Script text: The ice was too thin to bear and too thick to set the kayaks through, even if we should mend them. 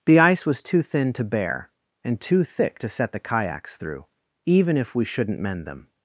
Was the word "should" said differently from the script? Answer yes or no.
yes